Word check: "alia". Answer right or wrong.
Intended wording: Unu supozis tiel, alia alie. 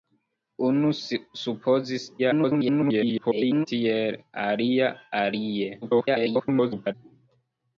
right